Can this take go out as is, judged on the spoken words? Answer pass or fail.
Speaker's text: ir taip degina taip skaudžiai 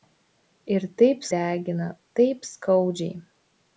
pass